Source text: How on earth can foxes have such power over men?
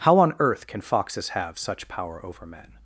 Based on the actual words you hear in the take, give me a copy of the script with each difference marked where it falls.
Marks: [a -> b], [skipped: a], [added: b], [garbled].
How on earth can foxes have such power over men?